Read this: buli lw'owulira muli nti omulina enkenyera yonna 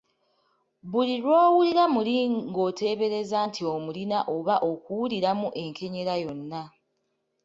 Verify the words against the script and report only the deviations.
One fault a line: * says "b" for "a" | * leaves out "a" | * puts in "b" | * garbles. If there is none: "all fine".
* puts in "ng'oteebereza"
* puts in "oba okuwuliramu"